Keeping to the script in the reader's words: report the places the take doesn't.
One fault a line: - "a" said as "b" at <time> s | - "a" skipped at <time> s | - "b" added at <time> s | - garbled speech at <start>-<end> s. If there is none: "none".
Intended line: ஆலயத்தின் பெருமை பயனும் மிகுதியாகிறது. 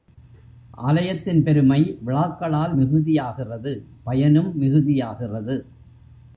- "விழாக்களால் மிகுதியாகிறது" added at 2.0 s